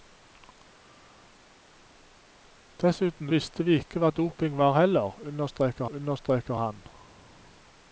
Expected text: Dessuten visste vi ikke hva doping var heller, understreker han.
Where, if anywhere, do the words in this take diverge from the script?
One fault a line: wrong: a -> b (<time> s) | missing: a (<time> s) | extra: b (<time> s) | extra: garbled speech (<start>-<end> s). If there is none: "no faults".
extra: understreker (5.9 s)